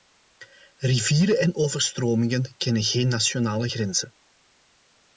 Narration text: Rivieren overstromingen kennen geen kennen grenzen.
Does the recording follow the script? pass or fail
fail